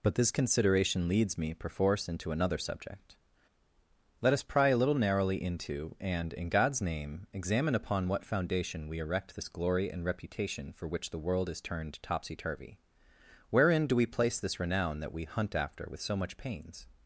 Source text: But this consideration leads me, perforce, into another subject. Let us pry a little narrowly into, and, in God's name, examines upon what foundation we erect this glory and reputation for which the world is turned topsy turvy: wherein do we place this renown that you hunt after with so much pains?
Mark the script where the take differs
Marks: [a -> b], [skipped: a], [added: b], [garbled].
But this consideration leads me, perforce, into another subject. Let us pry a little narrowly into, and, in God's name, [examines -> examine] upon what foundation we erect this glory and reputation for which the world is turned topsy turvy: wherein do we place this renown that [you -> we] hunt after with so much pains?